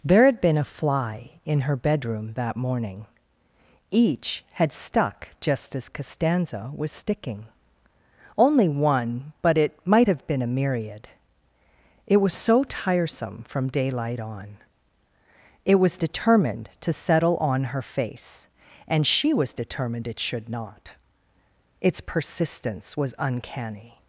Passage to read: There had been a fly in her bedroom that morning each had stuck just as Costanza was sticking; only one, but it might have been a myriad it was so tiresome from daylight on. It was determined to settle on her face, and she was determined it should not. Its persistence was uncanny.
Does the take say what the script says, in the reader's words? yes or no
yes